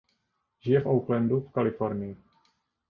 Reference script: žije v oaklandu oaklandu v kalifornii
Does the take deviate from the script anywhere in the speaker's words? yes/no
yes